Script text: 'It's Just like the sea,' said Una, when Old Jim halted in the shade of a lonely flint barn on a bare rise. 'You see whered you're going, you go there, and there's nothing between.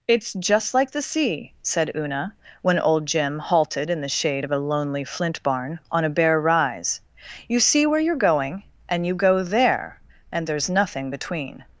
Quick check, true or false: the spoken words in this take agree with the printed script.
false